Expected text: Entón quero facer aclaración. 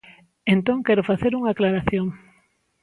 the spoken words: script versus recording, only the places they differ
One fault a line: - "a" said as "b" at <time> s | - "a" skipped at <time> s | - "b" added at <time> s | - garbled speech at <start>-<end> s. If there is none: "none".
- "unha" added at 1.4 s